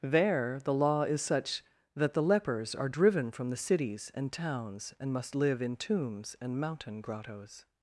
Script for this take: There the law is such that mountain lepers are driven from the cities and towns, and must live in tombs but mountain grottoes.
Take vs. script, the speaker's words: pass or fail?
fail